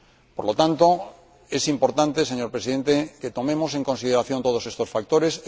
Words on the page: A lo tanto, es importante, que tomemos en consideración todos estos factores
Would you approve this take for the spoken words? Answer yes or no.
no